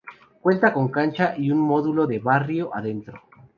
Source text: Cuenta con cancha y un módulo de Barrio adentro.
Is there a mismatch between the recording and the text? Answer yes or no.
no